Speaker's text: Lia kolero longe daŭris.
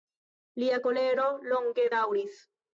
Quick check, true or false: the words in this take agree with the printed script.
true